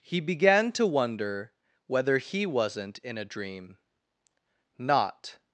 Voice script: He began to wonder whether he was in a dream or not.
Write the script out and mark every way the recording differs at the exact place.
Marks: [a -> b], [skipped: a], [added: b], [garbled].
He began to wonder whether he [was -> wasn't] in a dream [skipped: or] not.